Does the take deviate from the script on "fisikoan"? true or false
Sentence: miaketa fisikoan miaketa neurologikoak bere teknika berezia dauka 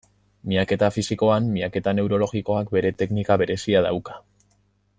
false